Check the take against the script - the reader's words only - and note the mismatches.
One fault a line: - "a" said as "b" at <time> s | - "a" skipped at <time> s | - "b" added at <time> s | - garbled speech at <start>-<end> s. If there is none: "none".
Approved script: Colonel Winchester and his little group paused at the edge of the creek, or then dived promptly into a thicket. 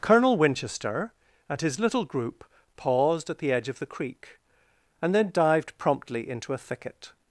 - "or" said as "and" at 5.0 s